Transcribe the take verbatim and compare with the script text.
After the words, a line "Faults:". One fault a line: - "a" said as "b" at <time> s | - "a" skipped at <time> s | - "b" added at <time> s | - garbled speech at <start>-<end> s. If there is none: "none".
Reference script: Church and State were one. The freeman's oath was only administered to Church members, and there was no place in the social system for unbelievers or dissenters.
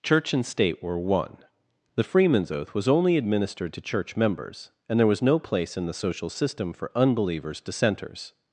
Church and State were one. The freeman's oath was only administered to Church members, and there was no place in the social system for unbelievers dissenters.
Faults:
- "or" skipped at 7.6 s